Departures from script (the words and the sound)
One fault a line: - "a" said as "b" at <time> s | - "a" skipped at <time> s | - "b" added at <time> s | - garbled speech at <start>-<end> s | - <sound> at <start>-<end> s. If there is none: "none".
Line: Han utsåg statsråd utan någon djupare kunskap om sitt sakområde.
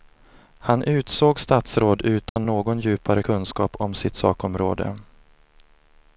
- dropout at 2.3-2.4 s